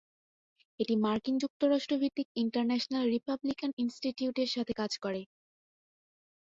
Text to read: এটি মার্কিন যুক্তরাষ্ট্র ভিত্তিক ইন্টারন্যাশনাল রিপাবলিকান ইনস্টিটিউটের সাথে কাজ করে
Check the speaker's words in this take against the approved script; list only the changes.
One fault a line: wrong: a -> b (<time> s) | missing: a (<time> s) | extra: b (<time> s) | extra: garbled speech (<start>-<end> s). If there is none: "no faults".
no faults